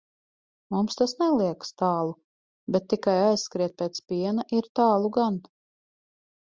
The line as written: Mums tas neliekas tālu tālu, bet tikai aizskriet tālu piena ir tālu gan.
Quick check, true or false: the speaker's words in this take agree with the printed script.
false